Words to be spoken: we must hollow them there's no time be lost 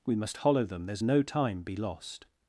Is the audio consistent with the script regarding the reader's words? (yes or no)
yes